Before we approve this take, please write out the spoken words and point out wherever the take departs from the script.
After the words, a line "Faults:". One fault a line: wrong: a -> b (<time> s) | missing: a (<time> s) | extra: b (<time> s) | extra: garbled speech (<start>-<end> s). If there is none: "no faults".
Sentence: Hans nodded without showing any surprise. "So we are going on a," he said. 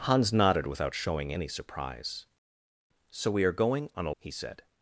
Hans nodded without showing any surprise. "So we are going on a," he said.
Faults:
no faults